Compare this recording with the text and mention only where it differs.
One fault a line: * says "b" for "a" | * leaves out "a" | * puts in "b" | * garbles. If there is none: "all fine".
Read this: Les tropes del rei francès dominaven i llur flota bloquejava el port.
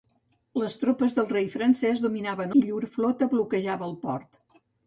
all fine